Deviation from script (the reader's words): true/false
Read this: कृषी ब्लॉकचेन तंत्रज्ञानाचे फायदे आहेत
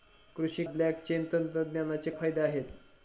false